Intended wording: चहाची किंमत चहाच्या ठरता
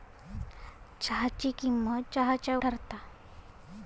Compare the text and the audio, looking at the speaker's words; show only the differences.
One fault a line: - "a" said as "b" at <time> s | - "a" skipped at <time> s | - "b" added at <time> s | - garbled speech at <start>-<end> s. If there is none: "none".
none